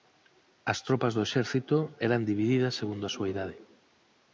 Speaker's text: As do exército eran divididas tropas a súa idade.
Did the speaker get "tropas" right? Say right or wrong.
wrong